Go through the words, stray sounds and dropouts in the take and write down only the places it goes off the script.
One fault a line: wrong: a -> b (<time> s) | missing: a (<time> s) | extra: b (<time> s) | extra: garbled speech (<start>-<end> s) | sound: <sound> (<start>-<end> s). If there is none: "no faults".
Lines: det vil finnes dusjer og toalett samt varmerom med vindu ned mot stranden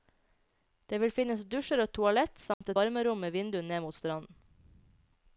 sound: dropout (2.5-2.6 s)